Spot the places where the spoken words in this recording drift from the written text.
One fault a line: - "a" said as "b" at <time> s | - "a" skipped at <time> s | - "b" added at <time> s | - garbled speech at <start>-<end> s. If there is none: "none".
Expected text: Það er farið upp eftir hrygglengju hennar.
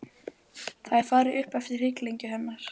none